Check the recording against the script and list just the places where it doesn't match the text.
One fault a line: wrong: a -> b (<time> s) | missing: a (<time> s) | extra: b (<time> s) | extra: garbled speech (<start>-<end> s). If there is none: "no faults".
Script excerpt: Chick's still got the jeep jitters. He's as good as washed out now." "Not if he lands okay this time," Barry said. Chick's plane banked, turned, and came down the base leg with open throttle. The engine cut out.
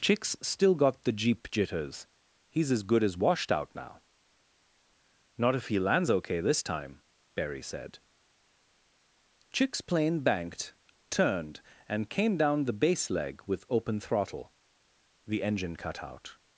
no faults